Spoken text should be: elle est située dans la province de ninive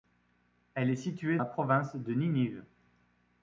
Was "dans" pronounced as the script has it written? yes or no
no